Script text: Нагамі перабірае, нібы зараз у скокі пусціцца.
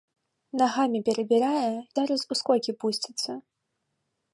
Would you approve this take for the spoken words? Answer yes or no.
no